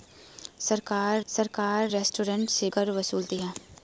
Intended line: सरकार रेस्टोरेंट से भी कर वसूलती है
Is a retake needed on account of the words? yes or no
yes